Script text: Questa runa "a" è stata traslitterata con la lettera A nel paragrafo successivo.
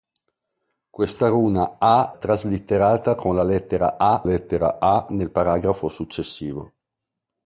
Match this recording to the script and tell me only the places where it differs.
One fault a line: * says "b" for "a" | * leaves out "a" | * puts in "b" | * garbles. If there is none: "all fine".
* leaves out "è stata"
* puts in "lettera A"